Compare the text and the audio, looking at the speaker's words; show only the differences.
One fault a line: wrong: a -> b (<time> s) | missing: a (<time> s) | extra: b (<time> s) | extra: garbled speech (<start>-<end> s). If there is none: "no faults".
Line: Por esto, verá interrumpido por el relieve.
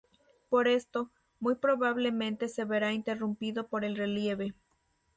extra: muy probablemente se (1.4 s)